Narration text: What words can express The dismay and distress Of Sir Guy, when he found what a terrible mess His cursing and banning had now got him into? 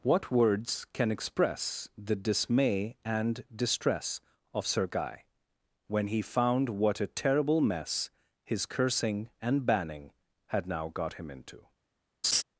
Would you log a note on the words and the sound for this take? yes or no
yes